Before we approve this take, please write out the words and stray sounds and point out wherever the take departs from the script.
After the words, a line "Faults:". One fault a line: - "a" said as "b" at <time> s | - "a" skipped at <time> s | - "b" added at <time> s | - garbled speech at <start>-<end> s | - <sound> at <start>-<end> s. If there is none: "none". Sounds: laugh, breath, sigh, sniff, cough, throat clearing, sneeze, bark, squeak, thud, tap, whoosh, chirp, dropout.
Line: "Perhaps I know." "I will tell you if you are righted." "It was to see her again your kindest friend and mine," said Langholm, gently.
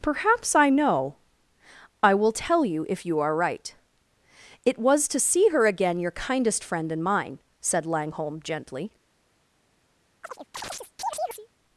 "Perhaps I know." "I will tell you if you are right." "It was to see her again your kindest friend and mine," said Langholm, gently.
Faults:
- "righted" said as "right" at 3.4 s
- chirp at 10.2-11.5 s